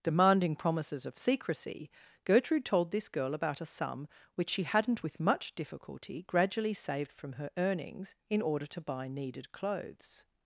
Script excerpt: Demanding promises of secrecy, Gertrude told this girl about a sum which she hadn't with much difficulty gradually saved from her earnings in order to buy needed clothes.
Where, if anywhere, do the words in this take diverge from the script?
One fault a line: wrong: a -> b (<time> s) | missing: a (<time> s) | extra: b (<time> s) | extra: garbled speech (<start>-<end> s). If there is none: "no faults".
no faults